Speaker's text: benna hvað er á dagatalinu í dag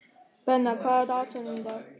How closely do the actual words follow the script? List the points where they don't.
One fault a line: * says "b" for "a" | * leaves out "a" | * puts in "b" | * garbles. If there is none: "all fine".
all fine